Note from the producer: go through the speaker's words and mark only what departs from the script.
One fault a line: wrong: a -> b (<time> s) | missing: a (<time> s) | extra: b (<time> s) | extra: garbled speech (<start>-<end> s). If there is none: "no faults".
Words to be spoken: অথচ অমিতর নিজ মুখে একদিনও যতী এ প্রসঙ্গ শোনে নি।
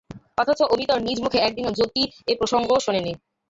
no faults